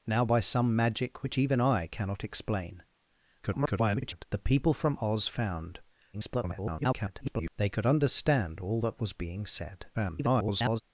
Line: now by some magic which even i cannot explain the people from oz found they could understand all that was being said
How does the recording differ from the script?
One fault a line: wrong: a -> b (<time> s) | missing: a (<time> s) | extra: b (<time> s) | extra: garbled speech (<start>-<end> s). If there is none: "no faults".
extra: garbled speech (3.4-4.3 s)
extra: garbled speech (6.1-7.5 s)
extra: garbled speech (9.9-10.8 s)